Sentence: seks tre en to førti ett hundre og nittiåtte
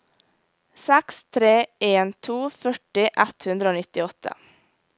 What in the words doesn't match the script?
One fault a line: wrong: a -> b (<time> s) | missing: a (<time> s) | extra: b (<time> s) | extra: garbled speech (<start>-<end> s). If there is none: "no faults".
no faults